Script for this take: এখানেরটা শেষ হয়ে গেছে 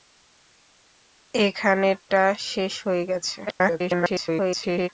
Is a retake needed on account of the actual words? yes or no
yes